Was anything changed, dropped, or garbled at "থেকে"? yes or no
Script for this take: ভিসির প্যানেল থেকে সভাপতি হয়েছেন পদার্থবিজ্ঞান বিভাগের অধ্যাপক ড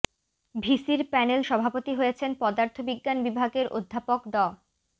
yes